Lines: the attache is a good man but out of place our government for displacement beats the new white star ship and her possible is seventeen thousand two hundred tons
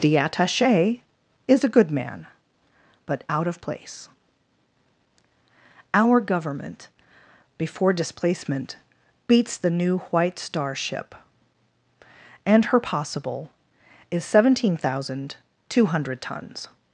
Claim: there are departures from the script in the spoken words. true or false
true